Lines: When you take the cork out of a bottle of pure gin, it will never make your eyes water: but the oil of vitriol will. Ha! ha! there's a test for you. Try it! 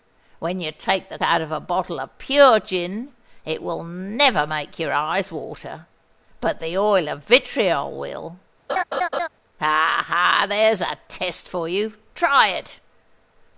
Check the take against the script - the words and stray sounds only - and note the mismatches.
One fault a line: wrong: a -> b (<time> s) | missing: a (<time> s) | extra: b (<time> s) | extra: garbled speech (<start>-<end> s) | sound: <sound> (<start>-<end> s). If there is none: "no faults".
missing: cork (1.2 s)
sound: laugh (8.7-9.3 s)